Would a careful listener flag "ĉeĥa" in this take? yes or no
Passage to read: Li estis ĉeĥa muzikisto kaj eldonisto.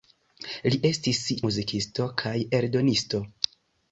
yes